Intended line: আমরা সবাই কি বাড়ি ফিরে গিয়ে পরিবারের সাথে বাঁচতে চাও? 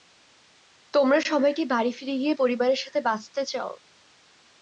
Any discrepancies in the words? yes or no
yes